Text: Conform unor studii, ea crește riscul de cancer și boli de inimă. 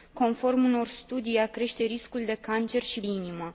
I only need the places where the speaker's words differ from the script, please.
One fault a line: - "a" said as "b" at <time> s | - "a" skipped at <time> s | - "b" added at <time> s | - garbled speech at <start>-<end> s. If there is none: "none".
- "boli de" skipped at 3.0 s